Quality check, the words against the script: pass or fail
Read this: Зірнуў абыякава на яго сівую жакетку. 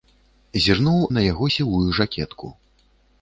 fail